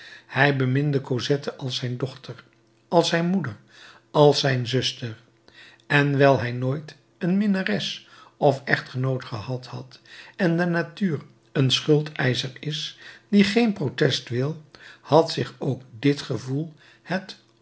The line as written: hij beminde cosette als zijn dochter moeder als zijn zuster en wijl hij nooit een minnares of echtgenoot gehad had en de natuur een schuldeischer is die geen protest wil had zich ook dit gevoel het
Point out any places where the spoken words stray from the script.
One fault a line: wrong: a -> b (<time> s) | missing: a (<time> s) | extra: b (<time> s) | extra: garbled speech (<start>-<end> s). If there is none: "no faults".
extra: als zijn (2.9 s)